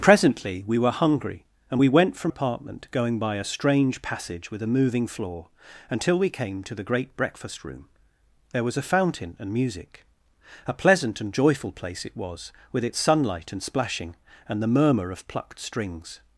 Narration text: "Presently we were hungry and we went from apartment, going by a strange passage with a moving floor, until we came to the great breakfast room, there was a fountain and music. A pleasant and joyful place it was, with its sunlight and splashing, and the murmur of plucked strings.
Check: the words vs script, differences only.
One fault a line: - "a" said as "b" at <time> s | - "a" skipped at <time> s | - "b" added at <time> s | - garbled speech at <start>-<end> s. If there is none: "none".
none